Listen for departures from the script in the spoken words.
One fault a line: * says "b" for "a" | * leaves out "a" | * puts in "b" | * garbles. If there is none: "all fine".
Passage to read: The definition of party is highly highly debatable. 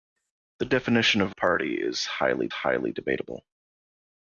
all fine